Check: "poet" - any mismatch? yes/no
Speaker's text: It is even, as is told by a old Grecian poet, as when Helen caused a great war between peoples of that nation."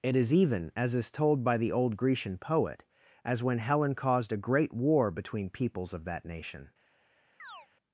no